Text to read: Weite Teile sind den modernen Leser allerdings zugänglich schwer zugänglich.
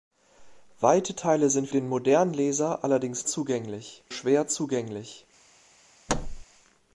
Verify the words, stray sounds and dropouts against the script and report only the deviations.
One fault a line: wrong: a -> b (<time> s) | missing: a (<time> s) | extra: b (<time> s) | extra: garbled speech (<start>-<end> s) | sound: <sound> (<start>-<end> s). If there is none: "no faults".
sound: thud (6.1-6.4 s)